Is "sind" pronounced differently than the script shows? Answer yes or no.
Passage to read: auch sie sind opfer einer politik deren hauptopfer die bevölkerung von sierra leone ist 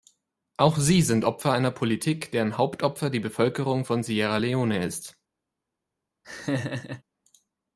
no